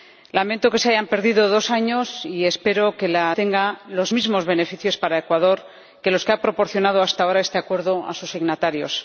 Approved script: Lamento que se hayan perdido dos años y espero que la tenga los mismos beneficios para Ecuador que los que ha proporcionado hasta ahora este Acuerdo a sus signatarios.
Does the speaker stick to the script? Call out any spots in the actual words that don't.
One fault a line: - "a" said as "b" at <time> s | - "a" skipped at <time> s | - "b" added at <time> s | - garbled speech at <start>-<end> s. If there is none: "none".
none